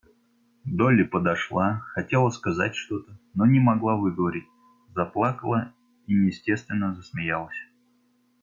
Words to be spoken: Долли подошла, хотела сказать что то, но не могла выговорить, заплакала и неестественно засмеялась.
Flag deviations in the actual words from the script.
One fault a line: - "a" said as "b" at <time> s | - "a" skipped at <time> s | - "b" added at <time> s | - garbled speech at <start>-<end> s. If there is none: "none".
none